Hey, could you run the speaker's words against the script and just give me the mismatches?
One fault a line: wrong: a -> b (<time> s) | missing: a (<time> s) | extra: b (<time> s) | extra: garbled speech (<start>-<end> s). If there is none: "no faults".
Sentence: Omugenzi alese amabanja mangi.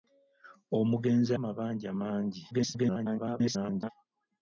missing: alese (1.3 s)
extra: garbled speech (2.5-3.9 s)